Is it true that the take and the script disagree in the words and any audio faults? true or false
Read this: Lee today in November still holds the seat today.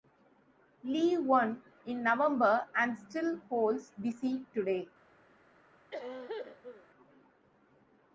true